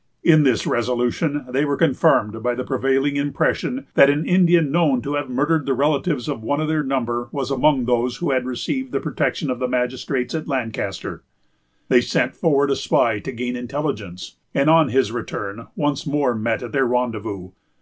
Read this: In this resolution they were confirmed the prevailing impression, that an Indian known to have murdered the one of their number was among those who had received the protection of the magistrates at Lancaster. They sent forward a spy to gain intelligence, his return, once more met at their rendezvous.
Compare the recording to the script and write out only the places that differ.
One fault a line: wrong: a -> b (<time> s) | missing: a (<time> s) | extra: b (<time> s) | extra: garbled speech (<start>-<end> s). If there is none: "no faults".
extra: by (2.4 s)
extra: relatives of (5.8 s)
extra: and on (14.5 s)